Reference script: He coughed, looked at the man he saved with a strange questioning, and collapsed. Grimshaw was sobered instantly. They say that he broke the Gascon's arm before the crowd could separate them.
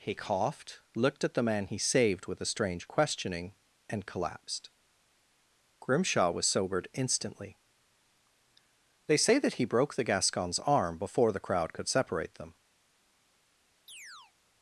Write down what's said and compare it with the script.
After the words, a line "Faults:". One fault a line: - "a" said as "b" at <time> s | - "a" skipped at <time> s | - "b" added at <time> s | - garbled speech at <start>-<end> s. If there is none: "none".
He coughed, looked at the man he saved with a strange questioning, and collapsed. Grimshaw was sobered instantly. They say that he broke the Gascon's arm before the crowd could separate them.
Faults:
none